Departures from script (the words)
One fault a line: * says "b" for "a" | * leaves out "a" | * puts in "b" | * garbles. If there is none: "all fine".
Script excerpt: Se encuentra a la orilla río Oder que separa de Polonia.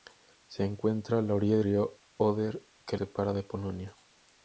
all fine